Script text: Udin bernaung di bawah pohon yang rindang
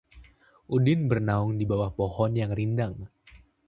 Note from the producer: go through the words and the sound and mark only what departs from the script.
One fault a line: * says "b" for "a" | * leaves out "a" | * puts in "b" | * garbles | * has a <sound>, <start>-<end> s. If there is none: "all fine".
all fine